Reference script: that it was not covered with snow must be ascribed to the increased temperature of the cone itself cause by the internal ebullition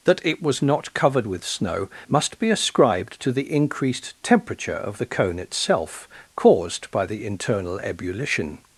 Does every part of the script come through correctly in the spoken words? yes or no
no